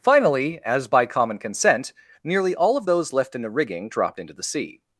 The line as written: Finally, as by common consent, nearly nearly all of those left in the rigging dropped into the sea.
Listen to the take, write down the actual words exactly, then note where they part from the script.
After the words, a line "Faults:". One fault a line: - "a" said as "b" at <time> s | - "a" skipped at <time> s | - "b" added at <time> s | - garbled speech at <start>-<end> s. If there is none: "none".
Finally, as by common consent, nearly all of those left in the rigging dropped into the sea.
Faults:
- "nearly" skipped at 2.5 s